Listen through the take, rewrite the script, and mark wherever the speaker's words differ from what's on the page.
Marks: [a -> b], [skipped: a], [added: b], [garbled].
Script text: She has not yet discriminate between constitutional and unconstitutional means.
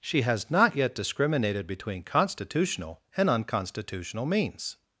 She has not yet [discriminate -> discriminated] between constitutional and unconstitutional means.